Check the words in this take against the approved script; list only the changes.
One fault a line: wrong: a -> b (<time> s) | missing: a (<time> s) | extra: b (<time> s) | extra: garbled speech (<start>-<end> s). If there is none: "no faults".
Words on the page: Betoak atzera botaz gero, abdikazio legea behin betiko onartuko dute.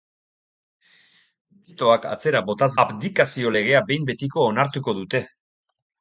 missing: gero (2.7 s)